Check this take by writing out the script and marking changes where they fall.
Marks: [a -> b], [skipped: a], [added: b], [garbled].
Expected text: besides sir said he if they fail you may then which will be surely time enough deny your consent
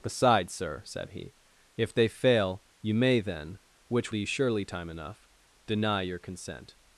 besides sir said he if they fail you may then which [skipped: will] be surely time enough deny your consent